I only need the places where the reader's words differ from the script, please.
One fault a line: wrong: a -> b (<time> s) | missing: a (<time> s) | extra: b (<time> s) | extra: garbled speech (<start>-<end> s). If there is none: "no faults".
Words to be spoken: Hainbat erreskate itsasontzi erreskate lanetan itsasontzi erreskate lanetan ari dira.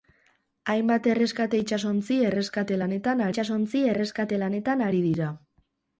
no faults